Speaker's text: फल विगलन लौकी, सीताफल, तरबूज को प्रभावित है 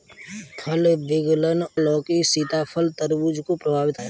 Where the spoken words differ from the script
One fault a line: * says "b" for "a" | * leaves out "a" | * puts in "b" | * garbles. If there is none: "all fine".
all fine